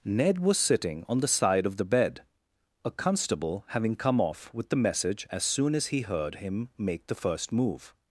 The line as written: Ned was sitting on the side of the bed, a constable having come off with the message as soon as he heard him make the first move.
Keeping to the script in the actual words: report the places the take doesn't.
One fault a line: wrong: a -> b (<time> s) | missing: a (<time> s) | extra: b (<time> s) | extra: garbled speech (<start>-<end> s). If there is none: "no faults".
no faults